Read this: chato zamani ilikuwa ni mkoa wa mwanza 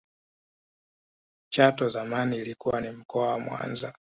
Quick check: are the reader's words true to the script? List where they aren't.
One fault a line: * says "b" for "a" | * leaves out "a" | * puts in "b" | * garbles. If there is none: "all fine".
all fine